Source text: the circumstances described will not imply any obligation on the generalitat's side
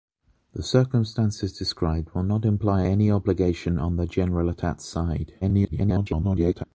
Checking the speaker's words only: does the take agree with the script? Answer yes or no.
no